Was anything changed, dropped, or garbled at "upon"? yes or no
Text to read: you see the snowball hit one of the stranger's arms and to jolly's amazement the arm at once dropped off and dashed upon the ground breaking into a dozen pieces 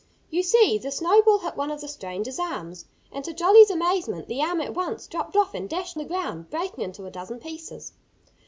yes